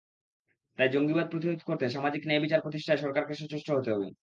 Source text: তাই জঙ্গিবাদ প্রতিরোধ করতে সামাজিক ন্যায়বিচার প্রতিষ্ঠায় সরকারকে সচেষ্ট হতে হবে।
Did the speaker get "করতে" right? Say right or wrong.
right